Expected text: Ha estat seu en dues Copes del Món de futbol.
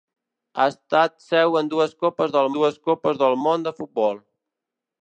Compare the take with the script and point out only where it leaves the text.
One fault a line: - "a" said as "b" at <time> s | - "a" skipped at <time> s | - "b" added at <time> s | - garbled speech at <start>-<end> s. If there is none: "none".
- "dues Copes del" added at 2.6 s